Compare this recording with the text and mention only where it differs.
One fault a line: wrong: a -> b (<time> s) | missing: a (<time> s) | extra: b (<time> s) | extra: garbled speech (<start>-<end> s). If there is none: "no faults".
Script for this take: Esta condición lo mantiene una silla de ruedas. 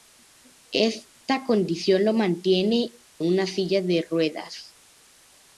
no faults